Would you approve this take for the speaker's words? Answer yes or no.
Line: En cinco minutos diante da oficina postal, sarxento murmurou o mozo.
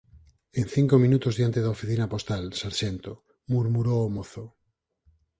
yes